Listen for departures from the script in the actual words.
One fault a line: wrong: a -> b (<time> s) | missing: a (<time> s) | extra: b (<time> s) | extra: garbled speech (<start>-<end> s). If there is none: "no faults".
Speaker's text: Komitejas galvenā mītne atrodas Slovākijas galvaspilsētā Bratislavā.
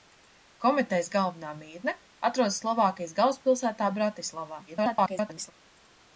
extra: garbled speech (4.7-5.5 s)